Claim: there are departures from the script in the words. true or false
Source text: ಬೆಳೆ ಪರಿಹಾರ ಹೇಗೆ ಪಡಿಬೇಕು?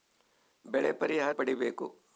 true